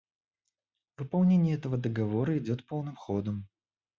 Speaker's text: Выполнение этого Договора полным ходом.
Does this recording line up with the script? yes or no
no